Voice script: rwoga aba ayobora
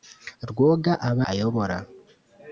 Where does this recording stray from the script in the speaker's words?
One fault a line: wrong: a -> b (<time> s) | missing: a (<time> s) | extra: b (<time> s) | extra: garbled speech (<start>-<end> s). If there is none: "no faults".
no faults